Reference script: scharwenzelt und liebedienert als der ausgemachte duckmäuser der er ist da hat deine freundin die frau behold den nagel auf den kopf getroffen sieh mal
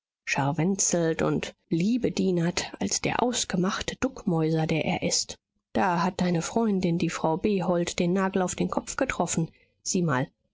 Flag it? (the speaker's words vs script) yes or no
no